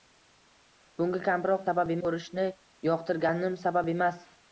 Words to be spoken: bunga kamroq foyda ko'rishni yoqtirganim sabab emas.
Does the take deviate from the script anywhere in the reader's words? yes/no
yes